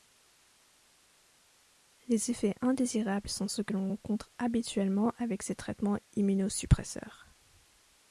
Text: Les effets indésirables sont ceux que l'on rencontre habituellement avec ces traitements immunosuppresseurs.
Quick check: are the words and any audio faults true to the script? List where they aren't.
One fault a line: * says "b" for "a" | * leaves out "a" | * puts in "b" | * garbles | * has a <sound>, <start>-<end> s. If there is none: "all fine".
all fine